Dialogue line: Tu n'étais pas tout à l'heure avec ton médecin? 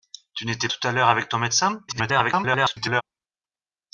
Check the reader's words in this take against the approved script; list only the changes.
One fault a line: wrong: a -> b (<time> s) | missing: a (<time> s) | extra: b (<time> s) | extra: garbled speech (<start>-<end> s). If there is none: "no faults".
missing: pas (0.7 s)
extra: garbled speech (1.9-3.0 s)